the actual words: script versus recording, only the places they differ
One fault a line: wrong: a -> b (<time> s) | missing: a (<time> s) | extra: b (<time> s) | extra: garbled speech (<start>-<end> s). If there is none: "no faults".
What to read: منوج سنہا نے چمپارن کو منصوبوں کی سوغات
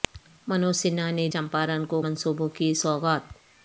no faults